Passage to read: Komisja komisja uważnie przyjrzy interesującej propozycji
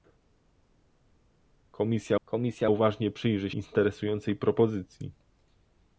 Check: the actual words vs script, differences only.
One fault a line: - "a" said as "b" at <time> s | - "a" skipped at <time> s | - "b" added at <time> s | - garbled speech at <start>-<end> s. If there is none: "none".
none